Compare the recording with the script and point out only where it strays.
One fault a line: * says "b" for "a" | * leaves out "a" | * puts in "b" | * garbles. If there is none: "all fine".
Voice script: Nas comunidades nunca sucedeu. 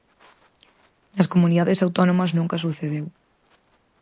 * puts in "autónomas"